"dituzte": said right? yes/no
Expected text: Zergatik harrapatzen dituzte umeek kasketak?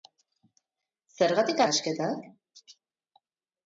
no